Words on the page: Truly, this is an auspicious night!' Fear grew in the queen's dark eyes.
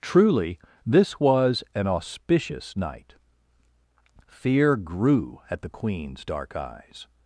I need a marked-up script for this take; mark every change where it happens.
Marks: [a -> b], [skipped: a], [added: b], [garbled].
Truly, this [is -> was] an auspicious night!' Fear grew [in -> at] the queen's dark eyes.